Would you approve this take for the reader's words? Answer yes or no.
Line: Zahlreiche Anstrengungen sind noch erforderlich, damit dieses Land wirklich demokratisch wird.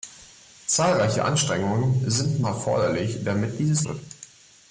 no